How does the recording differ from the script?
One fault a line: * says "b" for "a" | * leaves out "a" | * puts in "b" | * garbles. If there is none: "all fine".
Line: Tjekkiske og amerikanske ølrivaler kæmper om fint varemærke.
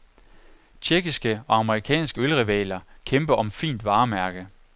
all fine